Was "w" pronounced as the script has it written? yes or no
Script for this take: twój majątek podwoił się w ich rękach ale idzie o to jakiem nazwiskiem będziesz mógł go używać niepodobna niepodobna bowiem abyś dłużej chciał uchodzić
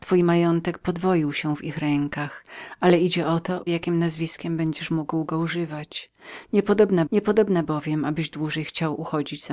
yes